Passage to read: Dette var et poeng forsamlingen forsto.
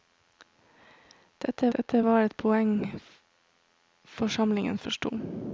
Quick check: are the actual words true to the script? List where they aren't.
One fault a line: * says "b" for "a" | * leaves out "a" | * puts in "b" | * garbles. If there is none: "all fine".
* puts in "dette"